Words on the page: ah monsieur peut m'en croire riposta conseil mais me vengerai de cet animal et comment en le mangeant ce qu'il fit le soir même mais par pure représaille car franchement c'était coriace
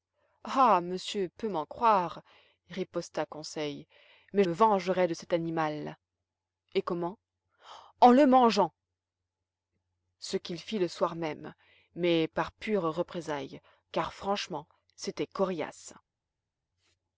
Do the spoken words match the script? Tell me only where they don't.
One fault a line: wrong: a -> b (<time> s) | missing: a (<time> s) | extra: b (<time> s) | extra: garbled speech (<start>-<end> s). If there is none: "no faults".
no faults